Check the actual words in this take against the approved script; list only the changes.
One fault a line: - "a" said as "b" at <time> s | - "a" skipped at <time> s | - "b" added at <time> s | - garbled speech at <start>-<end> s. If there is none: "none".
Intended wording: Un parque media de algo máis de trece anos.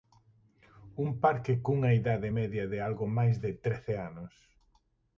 - "cunha idade" added at 1.6 s